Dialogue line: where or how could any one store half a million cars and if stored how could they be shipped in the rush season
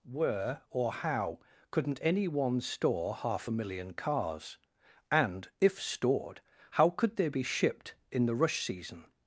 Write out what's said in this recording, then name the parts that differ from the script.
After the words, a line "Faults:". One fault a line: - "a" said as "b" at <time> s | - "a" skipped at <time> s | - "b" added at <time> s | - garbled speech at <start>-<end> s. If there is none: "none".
where or how couldn't any one store half a million cars and if stored how could they be shipped in the rush season
Faults:
- "could" said as "couldn't" at 1.7 s